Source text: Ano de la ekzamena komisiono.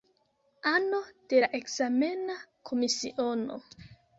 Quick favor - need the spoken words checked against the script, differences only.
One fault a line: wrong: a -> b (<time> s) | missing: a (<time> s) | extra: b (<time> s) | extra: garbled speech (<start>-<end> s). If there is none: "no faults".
no faults